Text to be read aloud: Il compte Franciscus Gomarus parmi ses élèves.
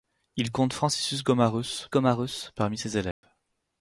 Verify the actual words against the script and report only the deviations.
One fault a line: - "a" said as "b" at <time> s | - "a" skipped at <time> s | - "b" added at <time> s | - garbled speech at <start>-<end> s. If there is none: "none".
- "Gomarus" added at 1.9 s